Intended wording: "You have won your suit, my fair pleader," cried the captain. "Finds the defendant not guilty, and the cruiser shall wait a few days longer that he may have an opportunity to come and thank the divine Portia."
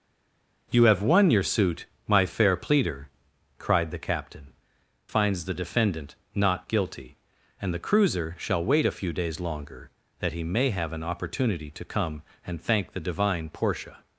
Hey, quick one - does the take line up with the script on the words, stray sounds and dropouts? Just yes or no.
yes